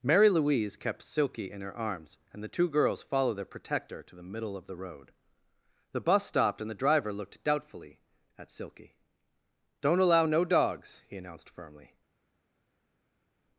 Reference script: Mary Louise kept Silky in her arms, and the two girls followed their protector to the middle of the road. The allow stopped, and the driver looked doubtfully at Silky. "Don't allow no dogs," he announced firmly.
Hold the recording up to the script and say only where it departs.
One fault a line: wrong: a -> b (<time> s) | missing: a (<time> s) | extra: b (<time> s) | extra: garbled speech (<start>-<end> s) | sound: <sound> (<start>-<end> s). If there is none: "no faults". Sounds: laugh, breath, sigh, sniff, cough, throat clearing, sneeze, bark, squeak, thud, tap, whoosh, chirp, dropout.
wrong: allow -> bus (6.0 s)